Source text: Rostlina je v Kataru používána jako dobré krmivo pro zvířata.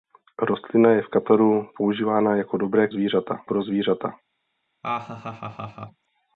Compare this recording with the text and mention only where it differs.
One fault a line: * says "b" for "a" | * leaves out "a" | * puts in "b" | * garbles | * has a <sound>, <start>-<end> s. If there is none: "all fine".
* says "zvířata" for "krmivo"
* has a laugh, 4.8-6.1 s